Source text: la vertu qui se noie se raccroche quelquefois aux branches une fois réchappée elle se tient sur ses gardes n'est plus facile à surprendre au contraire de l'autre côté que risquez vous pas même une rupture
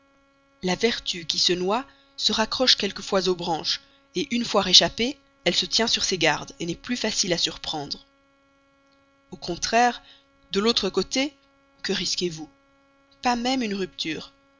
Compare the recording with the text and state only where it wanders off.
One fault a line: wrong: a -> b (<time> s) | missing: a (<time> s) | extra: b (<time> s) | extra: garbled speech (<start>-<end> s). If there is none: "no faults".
no faults